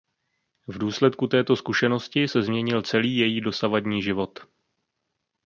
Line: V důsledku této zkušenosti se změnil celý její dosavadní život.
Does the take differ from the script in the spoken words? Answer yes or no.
no